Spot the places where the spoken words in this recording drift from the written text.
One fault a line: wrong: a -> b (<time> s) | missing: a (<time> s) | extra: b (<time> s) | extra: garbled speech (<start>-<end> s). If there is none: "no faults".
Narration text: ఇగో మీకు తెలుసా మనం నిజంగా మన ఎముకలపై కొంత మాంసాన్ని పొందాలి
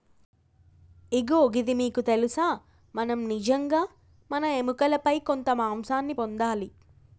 extra: గిది (1.5 s)